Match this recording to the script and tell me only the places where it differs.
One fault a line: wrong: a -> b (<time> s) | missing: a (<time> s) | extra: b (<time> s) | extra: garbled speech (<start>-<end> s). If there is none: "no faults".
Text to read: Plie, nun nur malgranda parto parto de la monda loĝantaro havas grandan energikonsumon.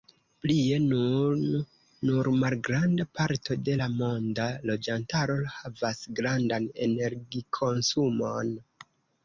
missing: parto (3.6 s)